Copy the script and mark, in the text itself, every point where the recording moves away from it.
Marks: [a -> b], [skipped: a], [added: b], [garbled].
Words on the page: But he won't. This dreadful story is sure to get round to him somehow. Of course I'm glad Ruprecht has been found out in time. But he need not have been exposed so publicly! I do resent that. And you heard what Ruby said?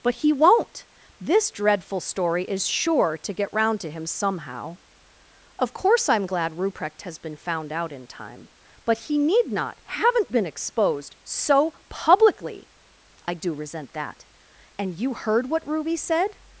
But he won't. This dreadful story is sure to get round to him somehow. Of course I'm glad Ruprecht has been found out in time. But he need not [have -> haven't] been exposed so publicly! I do resent that. And you heard what Ruby said?